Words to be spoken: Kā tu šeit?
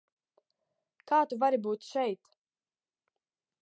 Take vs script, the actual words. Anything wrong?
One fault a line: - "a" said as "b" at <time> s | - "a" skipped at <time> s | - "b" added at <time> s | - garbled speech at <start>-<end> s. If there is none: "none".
- "vari būt" added at 1.4 s